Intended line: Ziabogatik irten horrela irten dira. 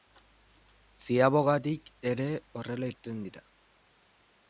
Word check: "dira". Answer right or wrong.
right